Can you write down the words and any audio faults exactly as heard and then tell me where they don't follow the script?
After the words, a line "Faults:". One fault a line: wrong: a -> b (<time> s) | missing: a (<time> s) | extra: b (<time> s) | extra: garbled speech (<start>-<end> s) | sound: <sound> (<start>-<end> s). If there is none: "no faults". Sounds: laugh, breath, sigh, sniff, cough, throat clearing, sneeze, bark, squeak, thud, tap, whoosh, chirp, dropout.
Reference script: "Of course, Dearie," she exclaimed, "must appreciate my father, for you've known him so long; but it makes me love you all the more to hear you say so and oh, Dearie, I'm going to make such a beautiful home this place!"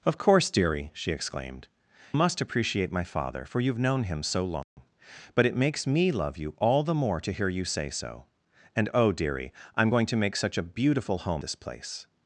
"Of course, Dearie," she exclaimed, "must appreciate my father, for you've known him so long; but it makes me love you all the more to hear you say so and oh, Dearie, I'm going to make such a beautiful home this place!"
Faults:
sound: dropout (4.6-4.8 s)